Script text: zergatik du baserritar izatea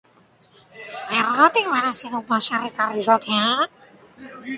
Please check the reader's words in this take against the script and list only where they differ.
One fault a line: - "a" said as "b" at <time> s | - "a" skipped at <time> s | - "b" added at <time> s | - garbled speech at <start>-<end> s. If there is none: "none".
- "merezi" added at 1.7 s